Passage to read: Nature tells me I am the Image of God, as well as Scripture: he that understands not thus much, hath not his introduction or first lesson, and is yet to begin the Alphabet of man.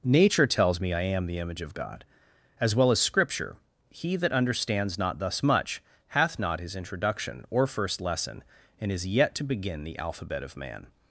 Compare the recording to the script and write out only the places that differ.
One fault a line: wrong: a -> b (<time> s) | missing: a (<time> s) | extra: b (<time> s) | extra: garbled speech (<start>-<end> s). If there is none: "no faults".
no faults